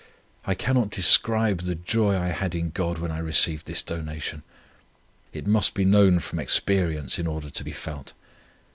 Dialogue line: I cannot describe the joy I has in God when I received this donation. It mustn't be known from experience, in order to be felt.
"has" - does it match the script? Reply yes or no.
no